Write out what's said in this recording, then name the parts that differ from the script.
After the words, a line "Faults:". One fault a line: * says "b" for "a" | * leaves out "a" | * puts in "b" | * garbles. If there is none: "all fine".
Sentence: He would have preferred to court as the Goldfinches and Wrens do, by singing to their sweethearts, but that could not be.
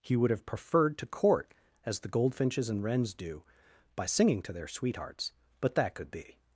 He would have preferred to court as the Goldfinches and Wrens do, by singing to their sweethearts, but that could be.
Faults:
* leaves out "not"